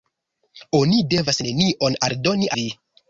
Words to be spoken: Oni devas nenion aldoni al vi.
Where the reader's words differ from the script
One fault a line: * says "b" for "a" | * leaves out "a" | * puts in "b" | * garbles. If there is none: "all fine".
* leaves out "al"